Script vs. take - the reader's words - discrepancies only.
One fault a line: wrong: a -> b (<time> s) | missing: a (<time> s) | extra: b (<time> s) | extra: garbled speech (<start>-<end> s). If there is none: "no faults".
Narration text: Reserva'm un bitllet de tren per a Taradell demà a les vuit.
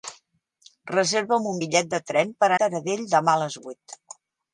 no faults